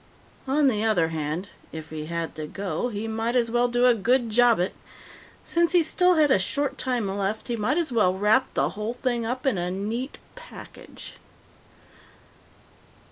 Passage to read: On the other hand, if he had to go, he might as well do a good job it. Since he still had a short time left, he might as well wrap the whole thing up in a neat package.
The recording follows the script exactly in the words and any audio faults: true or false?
true